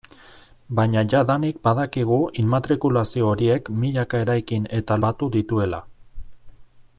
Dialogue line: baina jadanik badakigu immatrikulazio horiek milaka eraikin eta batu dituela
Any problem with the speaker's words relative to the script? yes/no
no